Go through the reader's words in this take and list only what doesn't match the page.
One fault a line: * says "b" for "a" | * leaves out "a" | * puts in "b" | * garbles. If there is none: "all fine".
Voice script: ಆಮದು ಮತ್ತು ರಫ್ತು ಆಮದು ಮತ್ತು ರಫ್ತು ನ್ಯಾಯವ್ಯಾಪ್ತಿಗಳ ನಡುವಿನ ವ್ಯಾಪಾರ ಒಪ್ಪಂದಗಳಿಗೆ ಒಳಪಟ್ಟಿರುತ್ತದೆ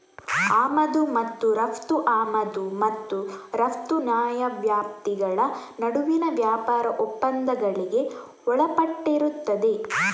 all fine